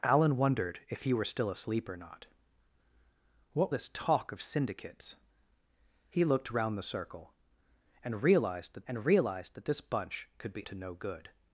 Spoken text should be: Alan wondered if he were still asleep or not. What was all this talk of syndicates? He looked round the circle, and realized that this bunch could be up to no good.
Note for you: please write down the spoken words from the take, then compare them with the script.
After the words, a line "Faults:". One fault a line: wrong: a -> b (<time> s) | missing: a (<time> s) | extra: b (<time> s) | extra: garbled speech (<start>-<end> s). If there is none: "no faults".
Alan wondered if he were still asleep or not. What this talk of syndicates? He looked round the circle, and realized that and realized that this bunch could be to no good.
Faults:
missing: was all (3.7 s)
extra: and realized that (8.9 s)
missing: up (10.7 s)